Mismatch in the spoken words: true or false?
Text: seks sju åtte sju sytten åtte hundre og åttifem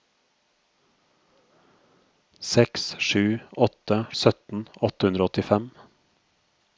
true